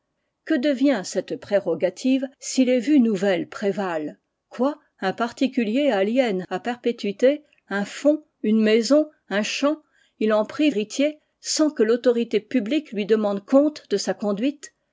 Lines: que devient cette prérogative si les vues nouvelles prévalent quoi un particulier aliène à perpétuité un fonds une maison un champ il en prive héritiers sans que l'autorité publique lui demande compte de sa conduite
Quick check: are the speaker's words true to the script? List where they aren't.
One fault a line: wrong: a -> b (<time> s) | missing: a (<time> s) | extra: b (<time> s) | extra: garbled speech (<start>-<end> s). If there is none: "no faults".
no faults